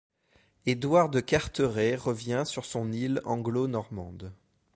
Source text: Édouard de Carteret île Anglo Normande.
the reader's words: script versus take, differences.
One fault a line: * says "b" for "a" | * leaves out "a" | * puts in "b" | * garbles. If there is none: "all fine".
* puts in "revient sur son"